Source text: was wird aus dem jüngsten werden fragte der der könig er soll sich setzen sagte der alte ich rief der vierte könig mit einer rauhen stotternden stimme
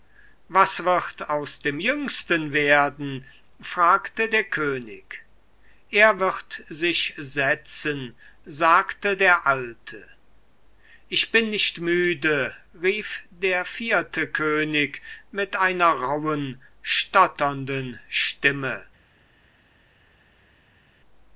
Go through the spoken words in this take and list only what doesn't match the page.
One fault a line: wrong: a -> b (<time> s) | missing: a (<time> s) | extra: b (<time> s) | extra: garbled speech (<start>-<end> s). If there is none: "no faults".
missing: der (4.5 s)
wrong: soll -> wird (6.2 s)
extra: bin nicht müde (11.3 s)